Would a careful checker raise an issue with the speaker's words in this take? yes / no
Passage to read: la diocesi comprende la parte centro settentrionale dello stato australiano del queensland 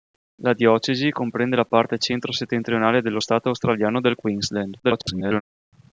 yes